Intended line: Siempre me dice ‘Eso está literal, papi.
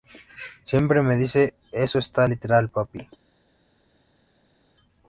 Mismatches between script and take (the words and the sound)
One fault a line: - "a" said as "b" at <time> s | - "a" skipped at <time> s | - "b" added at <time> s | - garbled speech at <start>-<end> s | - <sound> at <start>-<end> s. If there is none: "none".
none